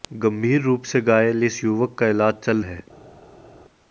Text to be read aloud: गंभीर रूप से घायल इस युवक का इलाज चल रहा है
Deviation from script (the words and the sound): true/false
true